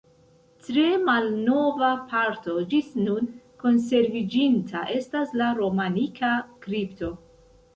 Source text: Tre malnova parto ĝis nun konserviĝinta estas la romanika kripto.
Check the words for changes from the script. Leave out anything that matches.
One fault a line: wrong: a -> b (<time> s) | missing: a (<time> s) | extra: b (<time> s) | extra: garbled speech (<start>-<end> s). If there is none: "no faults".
no faults